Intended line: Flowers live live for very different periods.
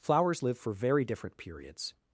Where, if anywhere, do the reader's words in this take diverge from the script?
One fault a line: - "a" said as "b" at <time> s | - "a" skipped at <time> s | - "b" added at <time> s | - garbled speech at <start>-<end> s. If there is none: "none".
- "live" skipped at 0.6 s